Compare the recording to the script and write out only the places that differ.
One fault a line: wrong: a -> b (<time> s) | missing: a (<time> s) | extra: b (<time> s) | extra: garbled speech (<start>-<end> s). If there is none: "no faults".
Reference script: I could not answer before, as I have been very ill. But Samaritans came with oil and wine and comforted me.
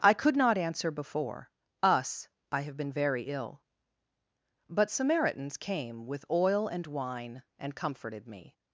wrong: as -> us (1.8 s)